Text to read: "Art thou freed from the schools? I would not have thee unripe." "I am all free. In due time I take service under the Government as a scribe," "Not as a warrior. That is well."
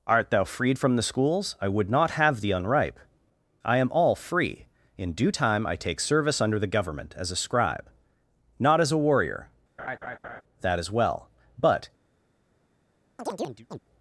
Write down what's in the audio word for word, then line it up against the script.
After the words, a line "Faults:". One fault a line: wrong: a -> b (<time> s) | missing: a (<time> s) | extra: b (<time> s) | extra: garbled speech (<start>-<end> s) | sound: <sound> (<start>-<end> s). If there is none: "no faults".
"Art thou freed from the schools? I would not have thee unripe." "I am all free. In due time I take service under the Government as a scribe," "Not as a warrior. That is well." "But
Faults:
sound: laugh (9.8-10.4 s)
extra: But (11.6 s)
sound: chirp (13.2-13.8 s)